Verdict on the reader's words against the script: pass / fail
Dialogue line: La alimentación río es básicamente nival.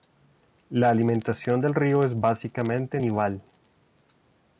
fail